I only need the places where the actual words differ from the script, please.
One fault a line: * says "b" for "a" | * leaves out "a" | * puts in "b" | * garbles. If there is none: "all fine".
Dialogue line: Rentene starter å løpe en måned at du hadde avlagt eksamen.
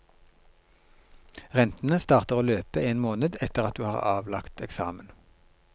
* puts in "etter"
* says "har" for "hadde"